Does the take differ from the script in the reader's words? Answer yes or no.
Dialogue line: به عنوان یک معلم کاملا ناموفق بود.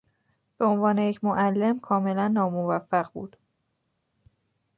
no